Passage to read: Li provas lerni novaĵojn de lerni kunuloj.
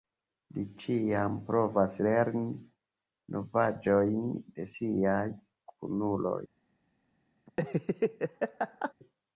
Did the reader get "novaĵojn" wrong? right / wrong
right